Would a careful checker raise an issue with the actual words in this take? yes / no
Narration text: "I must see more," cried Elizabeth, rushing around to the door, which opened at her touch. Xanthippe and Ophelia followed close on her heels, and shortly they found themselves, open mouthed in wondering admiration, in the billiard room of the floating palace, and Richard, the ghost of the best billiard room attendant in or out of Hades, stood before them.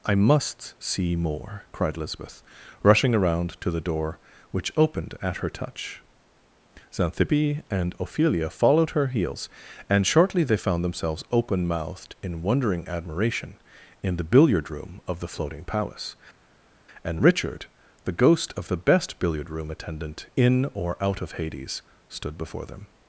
yes